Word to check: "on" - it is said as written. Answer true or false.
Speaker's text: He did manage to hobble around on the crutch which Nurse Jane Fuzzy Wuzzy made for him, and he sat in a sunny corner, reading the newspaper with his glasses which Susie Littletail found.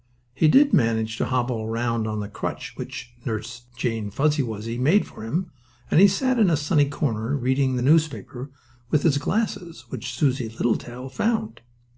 true